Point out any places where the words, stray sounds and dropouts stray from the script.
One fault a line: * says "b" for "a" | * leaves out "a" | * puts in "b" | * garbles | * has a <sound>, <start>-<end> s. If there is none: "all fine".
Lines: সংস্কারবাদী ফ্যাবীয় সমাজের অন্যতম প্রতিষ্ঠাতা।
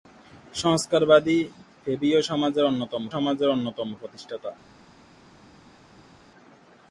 * puts in "সমাজের অন্যতম"